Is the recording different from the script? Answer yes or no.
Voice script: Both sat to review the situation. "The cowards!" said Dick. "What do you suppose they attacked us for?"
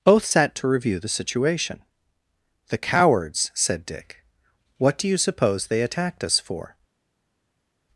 no